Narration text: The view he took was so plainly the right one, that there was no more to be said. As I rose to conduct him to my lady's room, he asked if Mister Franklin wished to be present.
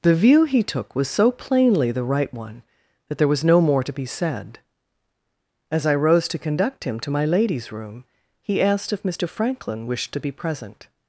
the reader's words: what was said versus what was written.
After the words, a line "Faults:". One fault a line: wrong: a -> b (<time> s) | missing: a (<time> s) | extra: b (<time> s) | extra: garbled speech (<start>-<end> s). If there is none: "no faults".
The view he took was so plainly the right one, that there was no more to be said. As I rose to conduct him to my lady's room, he asked if Mister Franklin wished to be present.
Faults:
no faults